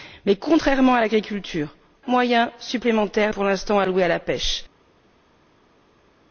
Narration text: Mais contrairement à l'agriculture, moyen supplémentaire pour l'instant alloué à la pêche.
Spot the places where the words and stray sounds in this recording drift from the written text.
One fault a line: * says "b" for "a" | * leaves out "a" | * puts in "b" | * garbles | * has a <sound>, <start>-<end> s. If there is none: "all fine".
all fine